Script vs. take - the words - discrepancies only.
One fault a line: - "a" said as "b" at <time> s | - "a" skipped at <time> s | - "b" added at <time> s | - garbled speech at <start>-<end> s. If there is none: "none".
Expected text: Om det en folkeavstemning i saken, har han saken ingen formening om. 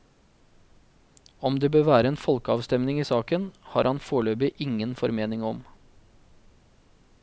- "bør være" added at 1.8 s
- "saken" said as "foreløpig" at 4.0 s